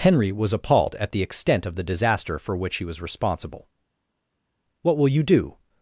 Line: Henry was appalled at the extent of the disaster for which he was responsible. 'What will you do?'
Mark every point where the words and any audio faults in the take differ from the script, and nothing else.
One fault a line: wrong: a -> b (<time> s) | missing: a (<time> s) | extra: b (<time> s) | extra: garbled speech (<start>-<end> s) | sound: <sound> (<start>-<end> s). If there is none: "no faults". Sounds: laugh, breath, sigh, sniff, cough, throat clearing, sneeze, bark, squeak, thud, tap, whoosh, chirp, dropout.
no faults